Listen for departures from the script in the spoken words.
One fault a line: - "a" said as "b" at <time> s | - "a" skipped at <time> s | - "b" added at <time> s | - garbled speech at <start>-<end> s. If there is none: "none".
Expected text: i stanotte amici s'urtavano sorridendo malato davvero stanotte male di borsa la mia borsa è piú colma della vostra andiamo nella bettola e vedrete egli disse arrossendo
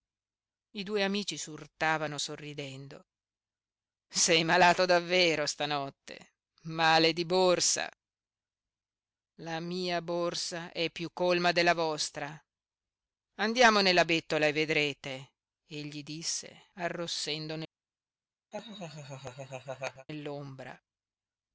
- "stanotte" said as "due" at 0.8 s
- "sei" added at 4.1 s